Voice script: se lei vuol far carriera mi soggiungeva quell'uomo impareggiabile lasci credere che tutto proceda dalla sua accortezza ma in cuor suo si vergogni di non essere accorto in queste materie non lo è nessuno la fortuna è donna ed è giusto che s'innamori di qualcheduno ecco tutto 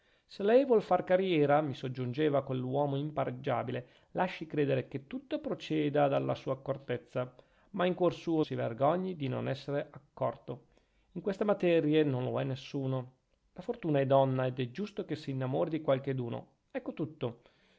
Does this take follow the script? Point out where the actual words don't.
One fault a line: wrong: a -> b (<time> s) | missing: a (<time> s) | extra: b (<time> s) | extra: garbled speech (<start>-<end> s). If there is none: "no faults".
no faults